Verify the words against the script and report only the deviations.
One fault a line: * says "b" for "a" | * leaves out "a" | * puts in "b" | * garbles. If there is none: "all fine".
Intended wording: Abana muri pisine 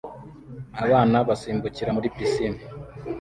* puts in "basimbukira"